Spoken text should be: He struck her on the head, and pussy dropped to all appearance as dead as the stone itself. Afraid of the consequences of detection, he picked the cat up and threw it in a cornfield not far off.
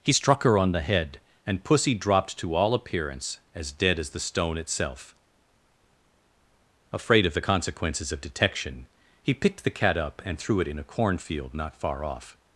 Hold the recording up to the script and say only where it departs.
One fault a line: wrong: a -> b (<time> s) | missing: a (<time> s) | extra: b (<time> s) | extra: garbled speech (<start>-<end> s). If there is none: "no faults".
no faults